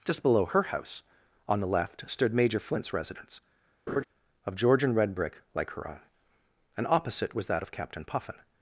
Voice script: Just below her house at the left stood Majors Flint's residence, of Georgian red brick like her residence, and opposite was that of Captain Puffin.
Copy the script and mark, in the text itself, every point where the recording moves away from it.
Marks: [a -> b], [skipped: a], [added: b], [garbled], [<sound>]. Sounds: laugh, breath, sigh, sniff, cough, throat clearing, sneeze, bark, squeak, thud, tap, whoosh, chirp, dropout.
Just below her house [at -> on] the left stood [Majors -> Major] Flint's residence, [laugh] of Georgian red brick like her [residence, -> own] and opposite was that of Captain Puffin.